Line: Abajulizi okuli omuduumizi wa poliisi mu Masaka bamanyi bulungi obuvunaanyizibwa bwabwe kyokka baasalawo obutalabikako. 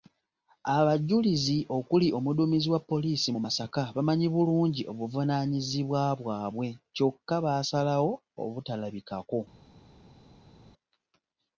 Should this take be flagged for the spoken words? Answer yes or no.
no